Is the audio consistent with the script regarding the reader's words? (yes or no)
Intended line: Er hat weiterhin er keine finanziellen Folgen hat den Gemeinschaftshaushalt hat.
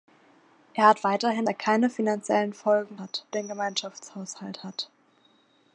yes